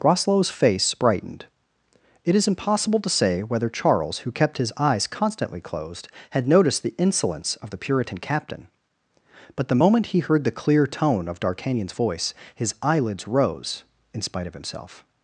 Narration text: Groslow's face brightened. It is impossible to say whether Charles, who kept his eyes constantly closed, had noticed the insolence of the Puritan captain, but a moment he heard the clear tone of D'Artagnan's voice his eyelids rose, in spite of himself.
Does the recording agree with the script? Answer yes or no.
no